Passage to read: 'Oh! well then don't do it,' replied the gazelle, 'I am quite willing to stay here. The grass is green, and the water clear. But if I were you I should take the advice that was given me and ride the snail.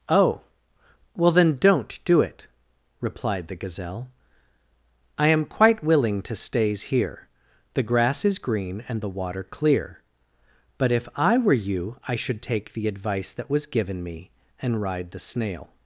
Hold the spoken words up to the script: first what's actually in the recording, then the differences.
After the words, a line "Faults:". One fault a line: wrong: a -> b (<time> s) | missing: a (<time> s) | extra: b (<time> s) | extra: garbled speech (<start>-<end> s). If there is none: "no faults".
'Oh! well then don't do it,' replied the gazelle, 'I am quite willing to stays here. The grass is green, and the water clear. But if I were you I should take the advice that was given me and ride the snail.
Faults:
wrong: stay -> stays (6.3 s)